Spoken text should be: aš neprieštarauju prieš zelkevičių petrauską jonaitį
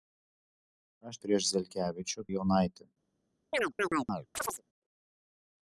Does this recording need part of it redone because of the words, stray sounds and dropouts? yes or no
yes